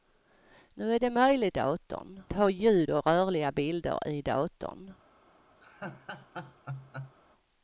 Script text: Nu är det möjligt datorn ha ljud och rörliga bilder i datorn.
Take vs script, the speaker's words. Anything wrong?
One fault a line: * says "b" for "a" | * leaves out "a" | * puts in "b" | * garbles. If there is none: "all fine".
all fine